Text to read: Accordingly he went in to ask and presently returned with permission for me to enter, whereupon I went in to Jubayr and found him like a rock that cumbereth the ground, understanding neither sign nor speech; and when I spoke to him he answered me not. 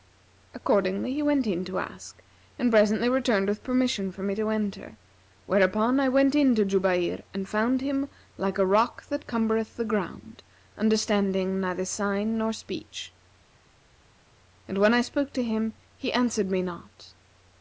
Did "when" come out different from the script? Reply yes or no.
no